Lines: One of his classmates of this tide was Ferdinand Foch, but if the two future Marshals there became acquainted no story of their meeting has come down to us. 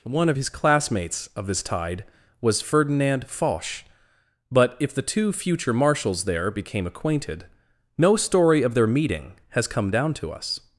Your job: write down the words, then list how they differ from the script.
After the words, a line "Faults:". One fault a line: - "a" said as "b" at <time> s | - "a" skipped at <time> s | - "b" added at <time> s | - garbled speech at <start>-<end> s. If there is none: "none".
One of his classmates of this tide was Ferdinand Foch, but if the two future Marshals there became acquainted no story of their meeting has come down to us.
Faults:
none